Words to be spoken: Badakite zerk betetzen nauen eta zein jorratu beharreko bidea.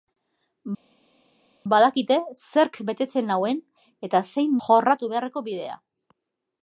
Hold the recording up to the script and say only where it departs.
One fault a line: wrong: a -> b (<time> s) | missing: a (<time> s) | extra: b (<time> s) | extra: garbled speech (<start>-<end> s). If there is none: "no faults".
no faults